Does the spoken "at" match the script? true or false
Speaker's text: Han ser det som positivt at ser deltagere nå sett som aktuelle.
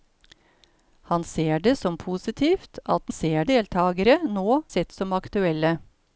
true